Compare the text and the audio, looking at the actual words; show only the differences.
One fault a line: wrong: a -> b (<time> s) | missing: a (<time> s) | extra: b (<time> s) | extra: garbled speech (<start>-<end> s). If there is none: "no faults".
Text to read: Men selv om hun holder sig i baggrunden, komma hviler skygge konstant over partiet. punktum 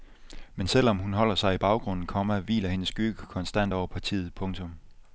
extra: hendes (2.7 s)